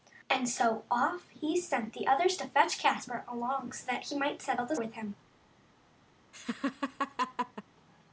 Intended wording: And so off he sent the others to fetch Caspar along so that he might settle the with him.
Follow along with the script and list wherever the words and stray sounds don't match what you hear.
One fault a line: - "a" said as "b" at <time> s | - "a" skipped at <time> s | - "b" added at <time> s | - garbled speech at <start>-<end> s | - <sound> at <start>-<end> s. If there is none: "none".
- laugh at 6.3-7.6 s